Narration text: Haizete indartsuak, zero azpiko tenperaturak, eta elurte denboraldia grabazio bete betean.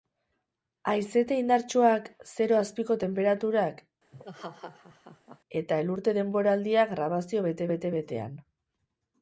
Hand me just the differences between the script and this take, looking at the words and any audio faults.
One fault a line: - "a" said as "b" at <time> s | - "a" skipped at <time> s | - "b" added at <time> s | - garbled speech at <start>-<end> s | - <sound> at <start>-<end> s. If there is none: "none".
- laugh at 4.1-5.4 s
- "bete" added at 7.7 s